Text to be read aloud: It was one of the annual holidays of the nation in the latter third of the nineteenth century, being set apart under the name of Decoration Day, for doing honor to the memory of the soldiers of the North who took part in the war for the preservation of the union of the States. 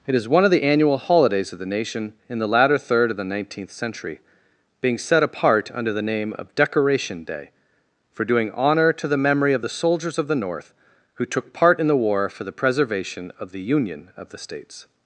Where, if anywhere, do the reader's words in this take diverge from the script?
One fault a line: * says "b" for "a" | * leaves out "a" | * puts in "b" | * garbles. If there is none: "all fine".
* says "is" for "was"